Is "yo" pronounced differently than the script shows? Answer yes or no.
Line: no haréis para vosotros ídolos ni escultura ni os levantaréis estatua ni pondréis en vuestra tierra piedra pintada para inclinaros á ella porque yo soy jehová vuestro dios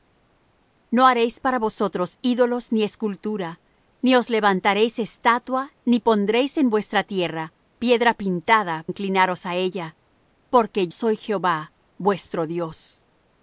yes